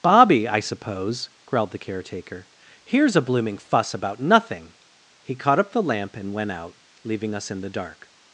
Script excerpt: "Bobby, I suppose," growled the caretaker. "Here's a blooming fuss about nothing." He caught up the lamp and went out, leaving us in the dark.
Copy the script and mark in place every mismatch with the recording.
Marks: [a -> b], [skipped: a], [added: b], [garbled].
"Bobby, I suppose," growled the caretaker. "Here's a blooming fuss about nothing." He caught up the lamp and went out, leaving us in the dark.